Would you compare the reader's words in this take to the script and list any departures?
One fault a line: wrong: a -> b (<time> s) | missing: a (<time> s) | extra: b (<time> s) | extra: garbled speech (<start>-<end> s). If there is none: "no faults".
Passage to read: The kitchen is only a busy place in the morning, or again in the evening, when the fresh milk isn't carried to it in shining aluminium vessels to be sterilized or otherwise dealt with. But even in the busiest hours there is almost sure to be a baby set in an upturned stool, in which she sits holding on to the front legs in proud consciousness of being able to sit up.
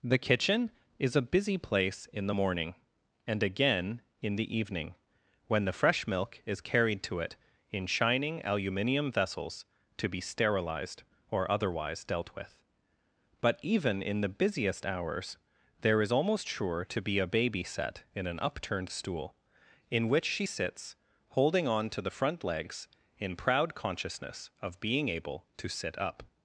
missing: only (1.1 s)
wrong: or -> and (3.3 s)
wrong: isn't -> is (6.5 s)